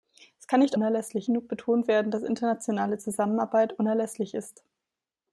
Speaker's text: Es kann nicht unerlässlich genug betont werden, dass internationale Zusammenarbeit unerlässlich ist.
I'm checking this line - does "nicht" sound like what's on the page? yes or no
yes